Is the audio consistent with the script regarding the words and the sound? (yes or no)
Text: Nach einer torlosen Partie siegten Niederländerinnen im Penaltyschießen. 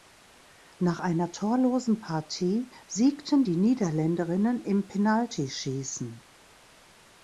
no